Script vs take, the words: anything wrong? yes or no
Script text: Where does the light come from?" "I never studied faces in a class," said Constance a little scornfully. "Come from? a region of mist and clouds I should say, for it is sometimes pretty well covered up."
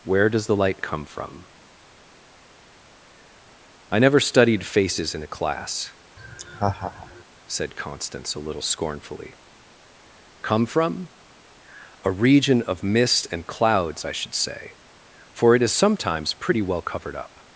no